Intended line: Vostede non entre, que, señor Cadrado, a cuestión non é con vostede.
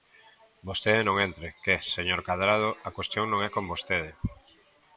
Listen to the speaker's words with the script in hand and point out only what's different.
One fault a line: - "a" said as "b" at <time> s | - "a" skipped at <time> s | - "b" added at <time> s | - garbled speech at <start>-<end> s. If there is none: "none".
none